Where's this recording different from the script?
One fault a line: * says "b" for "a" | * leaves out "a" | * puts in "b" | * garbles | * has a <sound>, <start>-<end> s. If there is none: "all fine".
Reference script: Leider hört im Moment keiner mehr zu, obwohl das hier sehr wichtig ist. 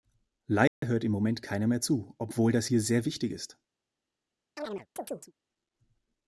* has a dropout, 0.7-0.8 s
* has a chirp, 4.6-5.3 s